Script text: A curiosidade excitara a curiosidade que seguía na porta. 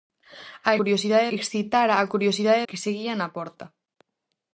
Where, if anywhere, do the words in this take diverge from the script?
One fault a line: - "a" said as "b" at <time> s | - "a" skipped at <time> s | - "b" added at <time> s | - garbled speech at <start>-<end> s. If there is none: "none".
none